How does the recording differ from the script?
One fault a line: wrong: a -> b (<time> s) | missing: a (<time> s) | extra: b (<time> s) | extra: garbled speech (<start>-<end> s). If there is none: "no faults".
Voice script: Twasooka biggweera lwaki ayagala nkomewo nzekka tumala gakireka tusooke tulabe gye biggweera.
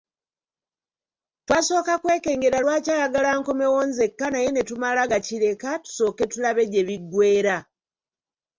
wrong: biggweera -> kwekengera (2.0 s)
extra: naye ne (4.3 s)